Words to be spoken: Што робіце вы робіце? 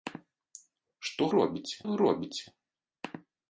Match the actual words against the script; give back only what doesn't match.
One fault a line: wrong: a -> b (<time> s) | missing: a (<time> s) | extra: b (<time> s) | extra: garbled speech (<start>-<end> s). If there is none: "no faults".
no faults